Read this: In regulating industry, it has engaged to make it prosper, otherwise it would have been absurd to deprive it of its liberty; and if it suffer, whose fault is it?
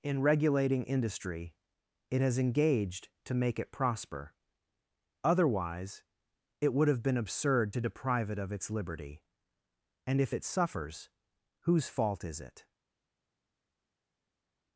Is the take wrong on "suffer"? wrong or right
wrong